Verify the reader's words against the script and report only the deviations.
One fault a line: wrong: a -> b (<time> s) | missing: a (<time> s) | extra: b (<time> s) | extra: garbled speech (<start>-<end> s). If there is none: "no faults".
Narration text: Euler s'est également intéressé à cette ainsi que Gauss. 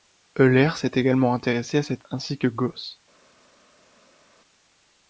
no faults